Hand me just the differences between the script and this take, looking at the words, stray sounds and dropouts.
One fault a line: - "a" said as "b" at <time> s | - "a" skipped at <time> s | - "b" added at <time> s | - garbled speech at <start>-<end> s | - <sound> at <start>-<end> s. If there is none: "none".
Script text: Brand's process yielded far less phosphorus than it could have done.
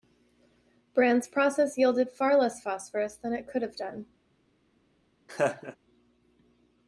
- laugh at 5.3-5.8 s